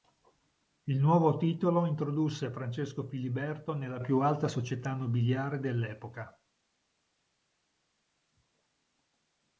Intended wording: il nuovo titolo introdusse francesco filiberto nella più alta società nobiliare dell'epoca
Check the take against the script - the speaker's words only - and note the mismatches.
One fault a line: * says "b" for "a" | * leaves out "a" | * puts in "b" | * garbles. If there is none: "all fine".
all fine